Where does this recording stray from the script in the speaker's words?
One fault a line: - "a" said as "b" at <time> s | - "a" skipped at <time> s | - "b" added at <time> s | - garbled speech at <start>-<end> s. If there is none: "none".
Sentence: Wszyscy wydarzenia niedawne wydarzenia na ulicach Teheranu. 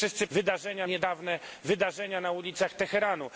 none